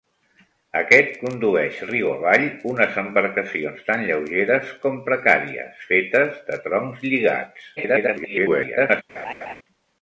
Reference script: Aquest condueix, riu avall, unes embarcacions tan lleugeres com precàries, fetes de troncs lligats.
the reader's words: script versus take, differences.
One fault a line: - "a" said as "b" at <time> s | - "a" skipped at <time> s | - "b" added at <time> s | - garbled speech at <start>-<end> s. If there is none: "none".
- garbled speech at 7.8-9.0 s